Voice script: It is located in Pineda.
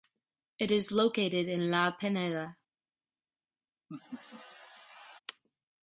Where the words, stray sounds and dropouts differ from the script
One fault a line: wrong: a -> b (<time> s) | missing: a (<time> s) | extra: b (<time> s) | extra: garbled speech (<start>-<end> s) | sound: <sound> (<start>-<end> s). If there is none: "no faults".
extra: La (1.7 s)
sound: laugh (3.9-5.2 s)